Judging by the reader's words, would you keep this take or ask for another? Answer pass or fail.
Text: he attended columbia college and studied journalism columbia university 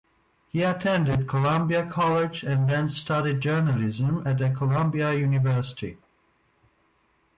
fail